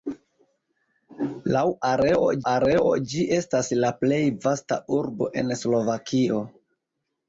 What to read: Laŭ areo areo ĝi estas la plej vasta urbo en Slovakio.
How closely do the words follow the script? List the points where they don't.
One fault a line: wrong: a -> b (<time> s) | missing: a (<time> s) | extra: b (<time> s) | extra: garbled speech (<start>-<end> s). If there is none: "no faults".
no faults